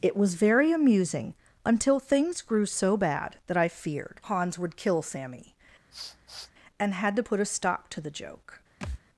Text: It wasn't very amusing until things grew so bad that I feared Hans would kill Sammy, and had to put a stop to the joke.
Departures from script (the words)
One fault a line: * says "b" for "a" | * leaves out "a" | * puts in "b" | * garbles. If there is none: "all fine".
* says "was" for "wasn't"